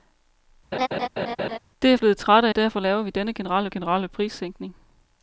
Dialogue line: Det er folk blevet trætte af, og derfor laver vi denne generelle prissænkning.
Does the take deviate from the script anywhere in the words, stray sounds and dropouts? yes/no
yes